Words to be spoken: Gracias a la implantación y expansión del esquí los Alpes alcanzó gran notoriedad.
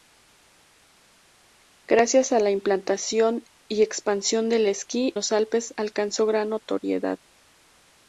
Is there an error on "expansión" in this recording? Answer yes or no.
no